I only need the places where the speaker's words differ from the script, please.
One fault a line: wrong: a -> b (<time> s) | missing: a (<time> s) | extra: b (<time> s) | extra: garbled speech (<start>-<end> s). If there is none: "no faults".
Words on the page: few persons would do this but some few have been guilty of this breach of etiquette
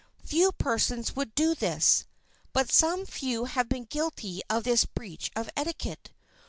no faults